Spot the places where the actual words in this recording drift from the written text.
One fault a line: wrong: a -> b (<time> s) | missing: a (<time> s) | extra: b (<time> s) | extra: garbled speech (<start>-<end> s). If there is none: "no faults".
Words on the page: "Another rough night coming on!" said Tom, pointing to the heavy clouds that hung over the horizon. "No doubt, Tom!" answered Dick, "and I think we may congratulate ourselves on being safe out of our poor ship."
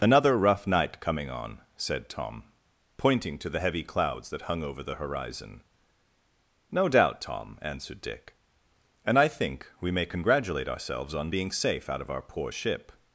no faults